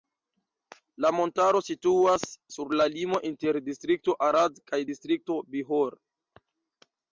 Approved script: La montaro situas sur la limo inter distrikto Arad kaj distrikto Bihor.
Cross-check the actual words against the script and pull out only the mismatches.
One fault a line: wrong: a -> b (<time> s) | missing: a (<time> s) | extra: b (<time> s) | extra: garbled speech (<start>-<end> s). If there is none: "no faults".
no faults